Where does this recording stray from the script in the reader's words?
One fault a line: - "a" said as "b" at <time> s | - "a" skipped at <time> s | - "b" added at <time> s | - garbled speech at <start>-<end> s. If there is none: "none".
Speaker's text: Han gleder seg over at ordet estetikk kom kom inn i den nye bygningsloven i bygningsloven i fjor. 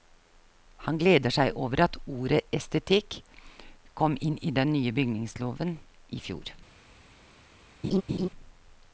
- "kom" skipped at 4.2 s
- "bygningsloven i" skipped at 6.2 s